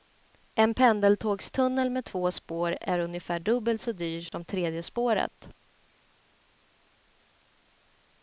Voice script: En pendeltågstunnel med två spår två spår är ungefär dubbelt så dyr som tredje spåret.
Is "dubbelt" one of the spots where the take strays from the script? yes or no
no